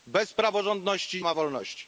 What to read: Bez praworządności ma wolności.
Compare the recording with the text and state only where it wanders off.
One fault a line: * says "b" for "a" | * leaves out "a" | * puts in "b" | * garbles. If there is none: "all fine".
all fine